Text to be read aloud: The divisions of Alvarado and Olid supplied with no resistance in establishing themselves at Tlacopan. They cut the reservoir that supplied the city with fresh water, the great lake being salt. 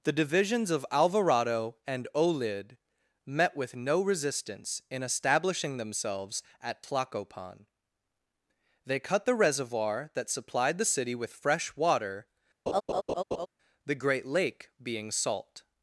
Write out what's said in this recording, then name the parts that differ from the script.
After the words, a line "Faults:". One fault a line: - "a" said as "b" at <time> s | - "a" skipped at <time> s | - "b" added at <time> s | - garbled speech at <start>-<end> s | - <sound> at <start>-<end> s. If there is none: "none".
The divisions of Alvarado and Olid met with no resistance in establishing themselves at Tlacopan. They cut the reservoir that supplied the city with fresh water, the great lake being salt.
Faults:
- "supplied" said as "met" at 3.2 s
- laugh at 12.7-13.5 s